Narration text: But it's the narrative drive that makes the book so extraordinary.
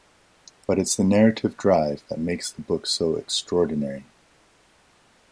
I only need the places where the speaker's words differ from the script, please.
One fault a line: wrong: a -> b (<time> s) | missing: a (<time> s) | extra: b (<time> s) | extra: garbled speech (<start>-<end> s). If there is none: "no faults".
no faults